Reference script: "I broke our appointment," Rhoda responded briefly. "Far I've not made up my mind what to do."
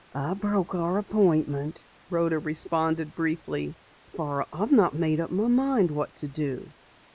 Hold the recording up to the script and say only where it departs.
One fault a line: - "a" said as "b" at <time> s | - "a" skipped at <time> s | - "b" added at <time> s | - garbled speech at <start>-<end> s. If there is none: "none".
none